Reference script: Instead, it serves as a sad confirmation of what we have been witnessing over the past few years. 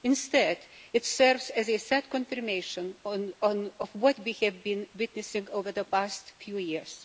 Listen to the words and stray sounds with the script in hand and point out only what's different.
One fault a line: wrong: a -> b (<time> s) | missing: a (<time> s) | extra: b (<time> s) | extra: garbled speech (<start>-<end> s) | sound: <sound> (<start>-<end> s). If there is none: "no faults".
no faults